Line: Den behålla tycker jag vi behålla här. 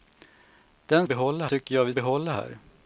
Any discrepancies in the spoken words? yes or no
no